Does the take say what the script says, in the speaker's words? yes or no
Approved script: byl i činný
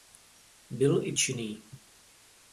yes